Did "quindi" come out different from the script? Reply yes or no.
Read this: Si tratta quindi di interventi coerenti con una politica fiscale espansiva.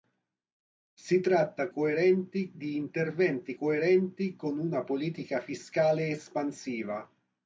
yes